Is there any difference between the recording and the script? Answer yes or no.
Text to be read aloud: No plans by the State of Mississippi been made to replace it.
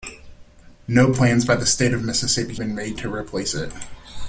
no